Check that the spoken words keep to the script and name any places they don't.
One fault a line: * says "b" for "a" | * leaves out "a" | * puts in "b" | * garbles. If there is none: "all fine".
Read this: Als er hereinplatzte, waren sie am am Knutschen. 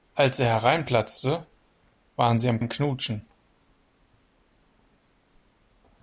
all fine